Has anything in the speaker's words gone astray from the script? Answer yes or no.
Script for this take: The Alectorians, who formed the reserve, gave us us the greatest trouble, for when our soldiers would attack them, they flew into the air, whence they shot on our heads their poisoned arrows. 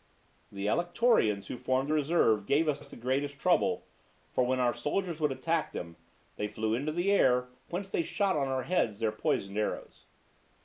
no